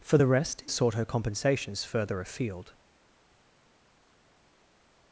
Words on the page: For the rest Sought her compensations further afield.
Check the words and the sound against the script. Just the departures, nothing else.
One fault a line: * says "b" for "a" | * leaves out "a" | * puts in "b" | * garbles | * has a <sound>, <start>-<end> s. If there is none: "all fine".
all fine